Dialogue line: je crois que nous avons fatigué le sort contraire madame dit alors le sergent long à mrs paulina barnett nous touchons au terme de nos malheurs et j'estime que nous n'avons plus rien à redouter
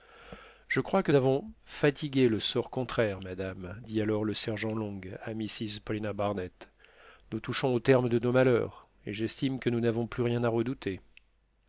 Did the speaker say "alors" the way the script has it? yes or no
yes